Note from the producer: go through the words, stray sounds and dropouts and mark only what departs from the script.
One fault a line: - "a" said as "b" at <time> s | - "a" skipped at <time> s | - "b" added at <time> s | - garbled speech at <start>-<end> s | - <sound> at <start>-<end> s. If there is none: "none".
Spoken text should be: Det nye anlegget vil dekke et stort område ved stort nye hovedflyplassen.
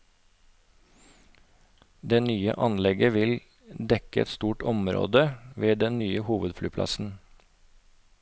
- "stort" said as "den" at 5.8 s